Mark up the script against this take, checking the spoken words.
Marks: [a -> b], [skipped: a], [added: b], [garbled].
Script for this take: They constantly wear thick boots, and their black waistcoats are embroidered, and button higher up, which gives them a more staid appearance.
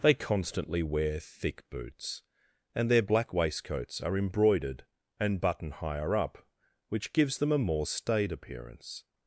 They constantly wear thick boots, and their black waistcoats are embroidered, and button higher up, which gives them a more staid appearance.